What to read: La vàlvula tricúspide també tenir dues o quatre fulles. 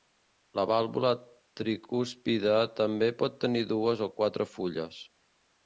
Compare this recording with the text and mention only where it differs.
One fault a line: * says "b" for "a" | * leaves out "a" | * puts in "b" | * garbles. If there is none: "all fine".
* puts in "pot"